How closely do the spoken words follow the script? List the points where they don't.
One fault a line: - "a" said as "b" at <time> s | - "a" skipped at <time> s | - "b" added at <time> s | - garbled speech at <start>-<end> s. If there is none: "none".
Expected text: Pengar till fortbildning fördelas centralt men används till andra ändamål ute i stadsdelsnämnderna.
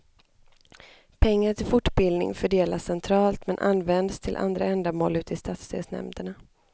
none